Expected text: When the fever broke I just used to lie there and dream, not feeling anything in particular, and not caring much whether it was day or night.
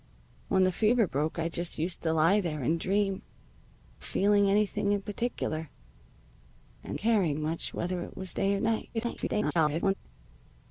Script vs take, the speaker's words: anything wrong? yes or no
yes